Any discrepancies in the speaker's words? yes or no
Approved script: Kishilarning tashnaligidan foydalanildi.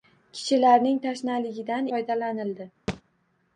no